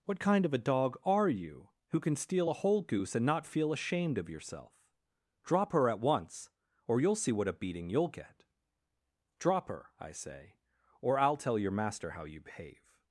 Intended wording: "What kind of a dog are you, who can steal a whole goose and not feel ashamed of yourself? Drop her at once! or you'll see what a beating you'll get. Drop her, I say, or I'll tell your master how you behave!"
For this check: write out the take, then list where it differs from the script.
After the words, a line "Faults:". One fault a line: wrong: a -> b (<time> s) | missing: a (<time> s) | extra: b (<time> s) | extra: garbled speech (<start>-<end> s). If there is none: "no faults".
"What kind of a dog are you, who can steal a whole goose and not feel ashamed of yourself? Drop her at once! or you'll see what a beating you'll get. Drop her, I say, or I'll tell your master how you behave!"
Faults:
no faults